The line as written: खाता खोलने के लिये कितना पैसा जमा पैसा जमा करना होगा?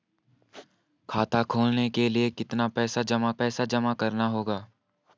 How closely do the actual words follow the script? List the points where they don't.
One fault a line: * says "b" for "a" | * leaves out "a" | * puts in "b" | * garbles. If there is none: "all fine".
all fine